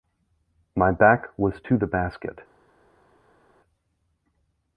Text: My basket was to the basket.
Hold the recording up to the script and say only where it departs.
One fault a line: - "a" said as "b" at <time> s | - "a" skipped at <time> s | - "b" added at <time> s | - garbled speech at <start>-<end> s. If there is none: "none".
- "basket" said as "back" at 0.9 s